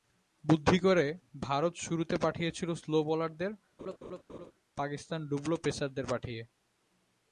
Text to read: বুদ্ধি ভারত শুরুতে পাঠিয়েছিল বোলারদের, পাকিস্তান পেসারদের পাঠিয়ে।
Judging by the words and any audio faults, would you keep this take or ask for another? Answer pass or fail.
fail